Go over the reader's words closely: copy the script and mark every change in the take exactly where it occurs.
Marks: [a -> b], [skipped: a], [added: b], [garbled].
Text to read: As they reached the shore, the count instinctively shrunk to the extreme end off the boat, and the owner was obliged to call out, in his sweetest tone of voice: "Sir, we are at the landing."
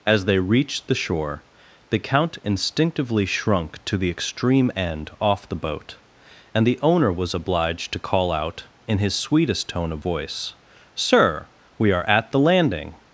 As they reached the shore, the count instinctively shrunk to the extreme end off the boat, and the owner was obliged to call out, in his sweetest tone of voice: "Sir, we are at the landing."